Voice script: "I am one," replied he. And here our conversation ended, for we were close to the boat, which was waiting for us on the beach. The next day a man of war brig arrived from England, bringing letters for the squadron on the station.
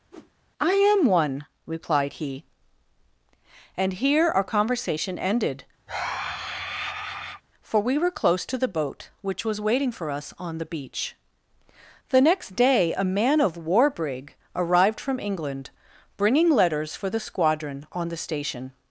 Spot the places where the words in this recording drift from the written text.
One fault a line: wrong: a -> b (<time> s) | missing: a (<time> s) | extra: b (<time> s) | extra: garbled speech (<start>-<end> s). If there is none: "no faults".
no faults